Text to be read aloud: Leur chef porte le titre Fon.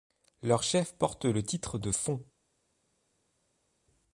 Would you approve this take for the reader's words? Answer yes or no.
no